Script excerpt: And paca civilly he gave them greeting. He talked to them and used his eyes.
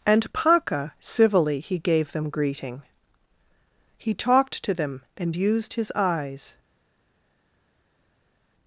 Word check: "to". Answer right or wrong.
right